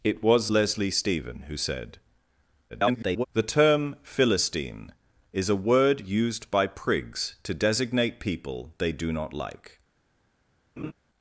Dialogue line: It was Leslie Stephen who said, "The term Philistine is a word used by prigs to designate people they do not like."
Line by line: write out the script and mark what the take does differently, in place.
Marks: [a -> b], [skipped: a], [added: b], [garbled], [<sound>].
It was Leslie Stephen who said, [garbled] "The term Philistine is a word used by prigs to designate people they do not like." [laugh]